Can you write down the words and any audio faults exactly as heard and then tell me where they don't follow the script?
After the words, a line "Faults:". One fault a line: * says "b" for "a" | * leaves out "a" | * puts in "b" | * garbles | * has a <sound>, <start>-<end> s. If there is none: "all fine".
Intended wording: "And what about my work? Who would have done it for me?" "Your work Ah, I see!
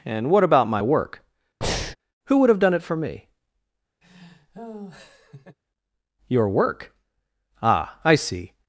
"And what about my work? Who would have done it for me?" "Your work Ah, I see!
Faults:
* has a breath, 1.6-2.0 s
* has a laugh, 4.0-5.6 s